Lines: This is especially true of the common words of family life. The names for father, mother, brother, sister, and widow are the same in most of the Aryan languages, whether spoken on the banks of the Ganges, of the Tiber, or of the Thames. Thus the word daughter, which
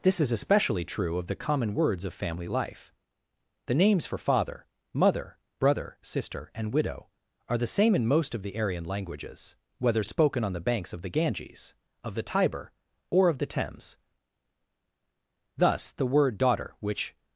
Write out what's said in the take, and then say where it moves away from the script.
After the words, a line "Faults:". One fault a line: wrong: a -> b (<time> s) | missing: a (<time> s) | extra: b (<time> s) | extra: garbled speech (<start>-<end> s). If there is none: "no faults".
This is especially true of the common words of family life. The names for father, mother, brother, sister, and widow are the same in most of the Aryan languages, whether spoken on the banks of the Ganges, of the Tiber, or of the Thames. Thus the word daughter, which
Faults:
no faults